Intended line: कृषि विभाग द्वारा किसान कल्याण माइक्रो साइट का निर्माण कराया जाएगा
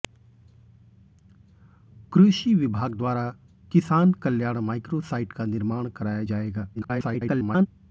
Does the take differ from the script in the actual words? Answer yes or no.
yes